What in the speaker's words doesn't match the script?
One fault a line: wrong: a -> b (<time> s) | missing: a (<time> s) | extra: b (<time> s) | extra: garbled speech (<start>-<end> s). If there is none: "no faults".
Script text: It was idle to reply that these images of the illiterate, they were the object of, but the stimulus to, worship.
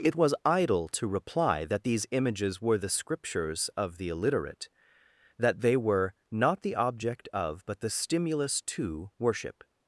extra: were the Scriptures (2.6 s)
extra: that (5.4 s)
extra: not (6.3 s)